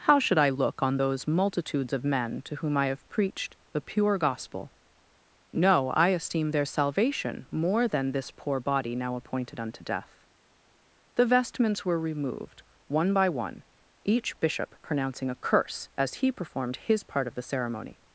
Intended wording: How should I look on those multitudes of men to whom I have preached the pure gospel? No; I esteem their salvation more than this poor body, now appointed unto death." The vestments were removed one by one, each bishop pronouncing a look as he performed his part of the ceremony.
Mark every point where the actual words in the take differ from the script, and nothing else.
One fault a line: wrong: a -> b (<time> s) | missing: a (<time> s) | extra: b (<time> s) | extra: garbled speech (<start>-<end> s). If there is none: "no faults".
wrong: look -> curse (15.3 s)